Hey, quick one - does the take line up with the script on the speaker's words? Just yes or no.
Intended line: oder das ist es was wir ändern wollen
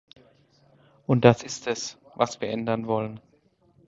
no